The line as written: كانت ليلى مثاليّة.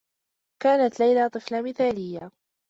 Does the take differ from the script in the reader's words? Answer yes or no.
yes